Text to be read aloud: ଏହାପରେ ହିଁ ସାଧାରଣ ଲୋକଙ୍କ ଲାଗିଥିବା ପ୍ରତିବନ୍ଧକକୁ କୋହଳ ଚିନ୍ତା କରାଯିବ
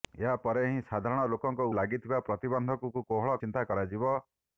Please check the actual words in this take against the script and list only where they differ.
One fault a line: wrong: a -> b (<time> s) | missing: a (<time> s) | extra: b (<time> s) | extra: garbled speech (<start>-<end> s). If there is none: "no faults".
no faults